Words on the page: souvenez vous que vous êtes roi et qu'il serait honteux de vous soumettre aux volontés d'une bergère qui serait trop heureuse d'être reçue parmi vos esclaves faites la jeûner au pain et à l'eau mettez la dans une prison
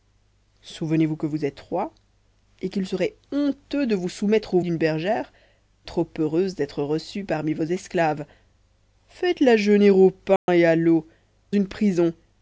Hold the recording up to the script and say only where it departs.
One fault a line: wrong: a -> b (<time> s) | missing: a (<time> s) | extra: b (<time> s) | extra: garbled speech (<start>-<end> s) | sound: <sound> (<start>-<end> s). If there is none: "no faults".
missing: volontés (4.6 s)
missing: qui serait (5.3 s)
sound: dropout (10.4-10.5 s)
missing: mettez la dans (11.1 s)